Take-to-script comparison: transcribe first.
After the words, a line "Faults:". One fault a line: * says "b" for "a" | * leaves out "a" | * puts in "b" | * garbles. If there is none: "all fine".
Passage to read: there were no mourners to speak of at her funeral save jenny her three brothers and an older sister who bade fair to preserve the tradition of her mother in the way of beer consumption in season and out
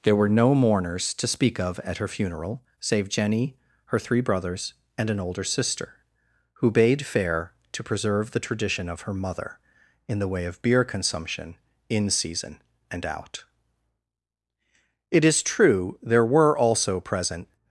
there were no mourners to speak of at her funeral save jenny her three brothers and an older sister who bade fair to preserve the tradition of her mother in the way of beer consumption in season and out it is true there were also present
Faults:
* puts in "it is true there were also present"